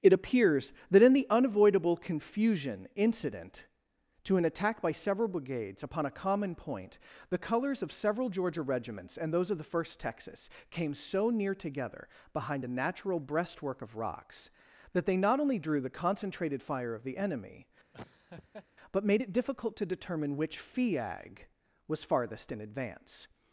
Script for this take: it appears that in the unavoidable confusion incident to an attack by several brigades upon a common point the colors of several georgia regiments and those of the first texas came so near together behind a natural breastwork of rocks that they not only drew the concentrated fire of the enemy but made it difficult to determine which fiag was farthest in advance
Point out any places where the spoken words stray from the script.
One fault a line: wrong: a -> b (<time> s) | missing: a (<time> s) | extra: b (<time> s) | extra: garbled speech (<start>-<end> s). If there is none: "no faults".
no faults